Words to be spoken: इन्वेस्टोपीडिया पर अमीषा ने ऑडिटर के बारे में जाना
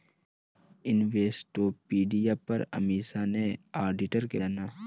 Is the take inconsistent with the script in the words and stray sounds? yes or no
yes